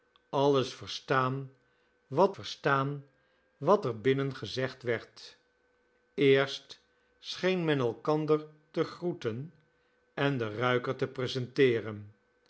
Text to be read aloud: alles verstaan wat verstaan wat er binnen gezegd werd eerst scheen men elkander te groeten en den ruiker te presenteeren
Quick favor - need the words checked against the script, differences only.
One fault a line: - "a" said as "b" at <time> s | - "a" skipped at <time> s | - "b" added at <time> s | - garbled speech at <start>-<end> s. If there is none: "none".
none